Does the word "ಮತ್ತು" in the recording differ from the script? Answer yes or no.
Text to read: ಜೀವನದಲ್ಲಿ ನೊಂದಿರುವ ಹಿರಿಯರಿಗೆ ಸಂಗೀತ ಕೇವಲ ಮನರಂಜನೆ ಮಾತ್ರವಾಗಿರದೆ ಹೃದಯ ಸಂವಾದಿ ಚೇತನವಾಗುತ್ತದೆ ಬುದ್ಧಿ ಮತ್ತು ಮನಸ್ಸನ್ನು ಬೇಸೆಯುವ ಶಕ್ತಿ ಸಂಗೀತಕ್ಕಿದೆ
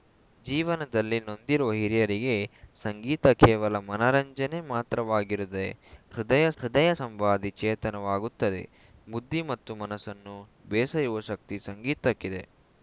no